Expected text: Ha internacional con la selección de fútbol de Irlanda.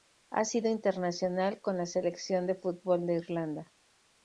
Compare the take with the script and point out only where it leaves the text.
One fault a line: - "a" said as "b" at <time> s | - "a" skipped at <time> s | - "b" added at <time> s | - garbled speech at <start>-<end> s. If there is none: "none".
- "sido" added at 0.5 s